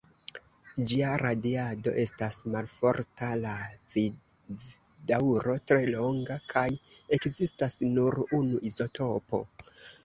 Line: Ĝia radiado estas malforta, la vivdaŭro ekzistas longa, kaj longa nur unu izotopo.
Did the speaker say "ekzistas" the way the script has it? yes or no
no